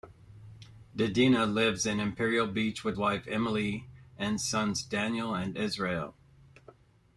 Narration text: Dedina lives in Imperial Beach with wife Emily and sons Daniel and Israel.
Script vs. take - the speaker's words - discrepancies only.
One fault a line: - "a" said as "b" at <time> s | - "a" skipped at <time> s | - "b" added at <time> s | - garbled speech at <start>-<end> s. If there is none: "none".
none